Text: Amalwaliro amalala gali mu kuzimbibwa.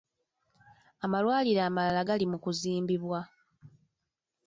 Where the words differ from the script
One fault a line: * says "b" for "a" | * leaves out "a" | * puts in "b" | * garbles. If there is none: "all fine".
all fine